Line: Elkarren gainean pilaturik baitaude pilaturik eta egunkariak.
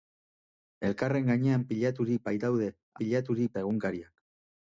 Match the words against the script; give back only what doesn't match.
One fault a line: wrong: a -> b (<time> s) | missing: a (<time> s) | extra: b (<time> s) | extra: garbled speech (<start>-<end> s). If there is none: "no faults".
no faults